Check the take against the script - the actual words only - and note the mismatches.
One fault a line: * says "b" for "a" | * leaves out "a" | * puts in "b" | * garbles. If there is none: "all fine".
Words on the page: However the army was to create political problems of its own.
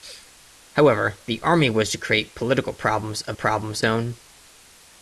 * says "problems" for "its"